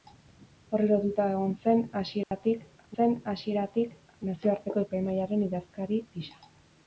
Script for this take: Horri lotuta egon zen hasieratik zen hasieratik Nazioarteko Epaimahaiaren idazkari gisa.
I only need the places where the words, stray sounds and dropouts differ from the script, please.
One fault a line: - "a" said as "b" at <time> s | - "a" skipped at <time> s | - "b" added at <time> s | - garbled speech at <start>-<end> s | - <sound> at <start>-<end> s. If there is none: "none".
- dropout at 2.2-2.3 s